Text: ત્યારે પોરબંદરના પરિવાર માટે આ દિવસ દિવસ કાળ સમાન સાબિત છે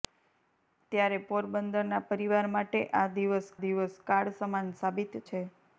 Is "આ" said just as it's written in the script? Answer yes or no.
yes